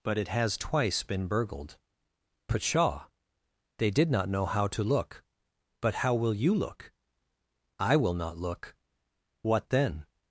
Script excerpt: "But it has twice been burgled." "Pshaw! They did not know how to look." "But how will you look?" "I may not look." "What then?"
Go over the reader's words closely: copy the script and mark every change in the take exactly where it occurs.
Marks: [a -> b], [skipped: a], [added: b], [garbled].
"But it has twice been burgled." "Pshaw! They did not know how to look." "But how will you look?" "I [may -> will] not look." "What then?"